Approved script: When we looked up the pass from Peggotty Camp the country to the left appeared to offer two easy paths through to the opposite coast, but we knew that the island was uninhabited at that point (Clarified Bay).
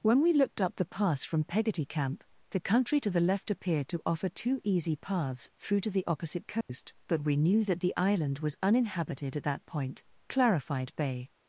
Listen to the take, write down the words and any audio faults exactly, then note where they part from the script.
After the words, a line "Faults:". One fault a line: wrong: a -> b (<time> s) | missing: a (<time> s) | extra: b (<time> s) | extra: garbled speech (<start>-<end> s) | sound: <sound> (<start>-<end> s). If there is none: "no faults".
When we looked up the pass from Peggotty Camp the country to the left appeared to offer two easy paths through to the opposite coast, but we knew that the island was uninhabited at that point (Clarified Bay).
Faults:
sound: dropout (6.6-6.7 s)